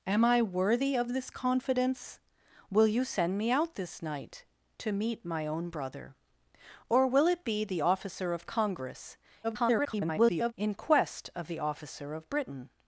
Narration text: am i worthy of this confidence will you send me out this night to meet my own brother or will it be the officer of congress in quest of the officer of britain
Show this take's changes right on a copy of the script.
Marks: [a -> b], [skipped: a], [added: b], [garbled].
am i worthy of this confidence will you send me out this night to meet my own brother or will it be the officer of congress [garbled] in quest of the officer of britain